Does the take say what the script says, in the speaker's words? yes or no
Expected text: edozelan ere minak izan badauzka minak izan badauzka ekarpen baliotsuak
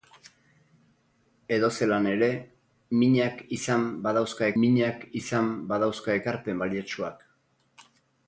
yes